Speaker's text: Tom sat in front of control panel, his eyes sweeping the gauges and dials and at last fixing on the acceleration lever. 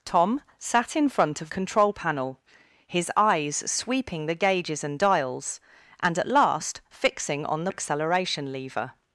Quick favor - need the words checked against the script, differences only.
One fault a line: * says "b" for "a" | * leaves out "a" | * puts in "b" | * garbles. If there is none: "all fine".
all fine